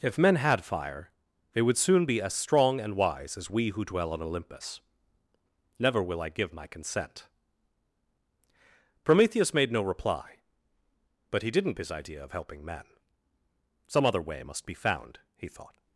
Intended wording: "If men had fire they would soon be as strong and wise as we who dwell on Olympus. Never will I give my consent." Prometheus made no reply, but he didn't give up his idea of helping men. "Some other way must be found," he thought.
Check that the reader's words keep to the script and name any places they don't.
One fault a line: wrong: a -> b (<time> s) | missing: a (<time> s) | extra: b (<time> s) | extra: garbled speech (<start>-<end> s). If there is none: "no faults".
missing: give up (11.7 s)